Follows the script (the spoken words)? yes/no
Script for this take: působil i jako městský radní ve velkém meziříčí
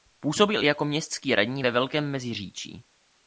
yes